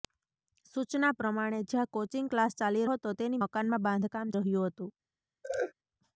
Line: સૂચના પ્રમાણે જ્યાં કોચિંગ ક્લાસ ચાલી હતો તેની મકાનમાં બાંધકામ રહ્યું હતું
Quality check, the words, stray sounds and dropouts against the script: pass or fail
fail